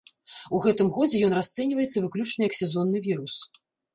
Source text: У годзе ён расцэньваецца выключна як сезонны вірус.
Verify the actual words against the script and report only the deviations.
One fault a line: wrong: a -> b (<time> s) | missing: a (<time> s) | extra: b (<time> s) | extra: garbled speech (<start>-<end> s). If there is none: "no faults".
extra: гэтым (0.6 s)